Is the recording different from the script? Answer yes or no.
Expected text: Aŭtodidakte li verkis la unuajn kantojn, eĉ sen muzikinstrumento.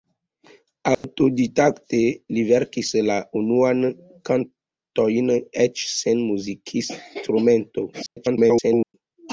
yes